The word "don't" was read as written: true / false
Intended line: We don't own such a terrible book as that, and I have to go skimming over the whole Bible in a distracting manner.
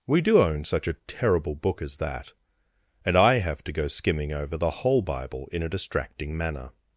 false